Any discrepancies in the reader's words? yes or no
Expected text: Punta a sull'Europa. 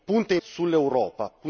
no